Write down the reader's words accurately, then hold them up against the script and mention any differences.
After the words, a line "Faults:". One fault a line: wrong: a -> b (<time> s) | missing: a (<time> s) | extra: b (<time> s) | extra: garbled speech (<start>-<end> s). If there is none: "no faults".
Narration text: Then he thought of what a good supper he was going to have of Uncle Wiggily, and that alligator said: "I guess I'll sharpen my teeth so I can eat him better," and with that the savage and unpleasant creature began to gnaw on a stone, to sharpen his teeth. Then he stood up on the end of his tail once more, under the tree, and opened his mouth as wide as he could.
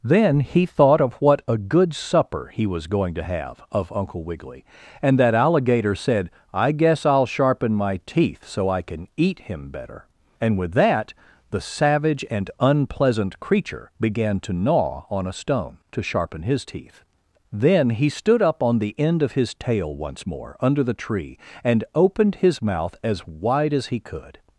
Then he thought of what a good supper he was going to have of Uncle Wiggily, and that alligator said: "I guess I'll sharpen my teeth so I can eat him better," and with that the savage and unpleasant creature began to gnaw on a stone, to sharpen his teeth. Then he stood up on the end of his tail once more, under the tree, and opened his mouth as wide as he could.
Faults:
no faults